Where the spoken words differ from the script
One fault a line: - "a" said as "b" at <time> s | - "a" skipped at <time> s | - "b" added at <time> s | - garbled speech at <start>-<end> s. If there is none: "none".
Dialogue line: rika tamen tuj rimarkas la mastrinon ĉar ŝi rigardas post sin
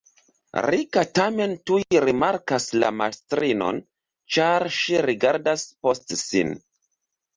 none